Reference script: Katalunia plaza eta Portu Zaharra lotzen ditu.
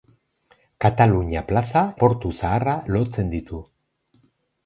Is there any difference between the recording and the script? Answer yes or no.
yes